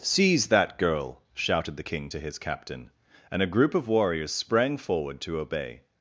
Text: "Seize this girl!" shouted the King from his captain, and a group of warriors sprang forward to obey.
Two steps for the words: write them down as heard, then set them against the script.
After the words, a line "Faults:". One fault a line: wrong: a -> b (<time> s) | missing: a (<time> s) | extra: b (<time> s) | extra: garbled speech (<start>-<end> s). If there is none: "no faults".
"Seize that girl!" shouted the King to his captain, and a group of warriors sprang forward to obey.
Faults:
wrong: this -> that (0.5 s)
wrong: from -> to (2.1 s)